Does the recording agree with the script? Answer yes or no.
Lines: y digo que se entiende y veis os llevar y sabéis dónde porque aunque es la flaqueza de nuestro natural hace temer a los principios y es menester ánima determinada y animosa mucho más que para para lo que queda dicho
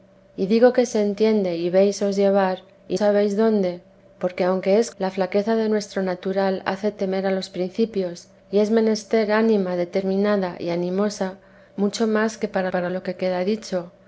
yes